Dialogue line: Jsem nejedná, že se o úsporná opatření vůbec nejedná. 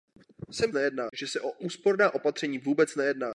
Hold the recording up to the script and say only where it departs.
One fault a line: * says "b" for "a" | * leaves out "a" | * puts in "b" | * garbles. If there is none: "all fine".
all fine